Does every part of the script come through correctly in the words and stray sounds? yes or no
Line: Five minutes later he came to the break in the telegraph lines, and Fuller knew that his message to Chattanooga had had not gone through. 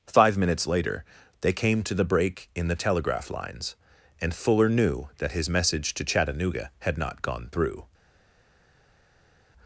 no